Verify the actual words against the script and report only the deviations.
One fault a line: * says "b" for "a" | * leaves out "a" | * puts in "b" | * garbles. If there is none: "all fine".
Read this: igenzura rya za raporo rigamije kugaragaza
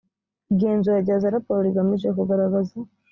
all fine